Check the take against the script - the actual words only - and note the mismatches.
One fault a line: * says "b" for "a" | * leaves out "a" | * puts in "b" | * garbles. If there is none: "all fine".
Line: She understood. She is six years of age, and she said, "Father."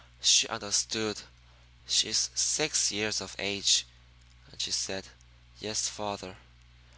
* puts in "Yes"